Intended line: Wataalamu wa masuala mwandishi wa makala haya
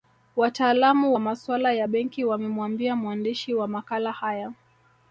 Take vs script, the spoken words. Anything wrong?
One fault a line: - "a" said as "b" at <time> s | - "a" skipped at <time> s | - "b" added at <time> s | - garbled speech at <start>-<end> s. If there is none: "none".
- "ya benki wamemwambia" added at 1.7 s